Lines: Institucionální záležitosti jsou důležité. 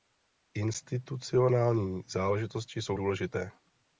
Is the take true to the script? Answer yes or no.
yes